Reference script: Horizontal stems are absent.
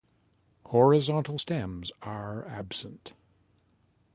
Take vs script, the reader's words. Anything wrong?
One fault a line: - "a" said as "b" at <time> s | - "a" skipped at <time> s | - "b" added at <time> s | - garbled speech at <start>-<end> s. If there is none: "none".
none